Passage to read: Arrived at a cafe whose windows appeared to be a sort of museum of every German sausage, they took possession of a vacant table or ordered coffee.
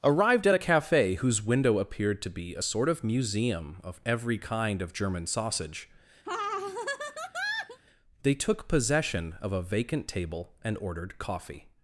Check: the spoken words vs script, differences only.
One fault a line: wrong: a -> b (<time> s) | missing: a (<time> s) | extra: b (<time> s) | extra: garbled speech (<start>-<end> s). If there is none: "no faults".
wrong: windows -> window (1.4 s)
extra: kind of (4.4 s)
wrong: or -> and (10.6 s)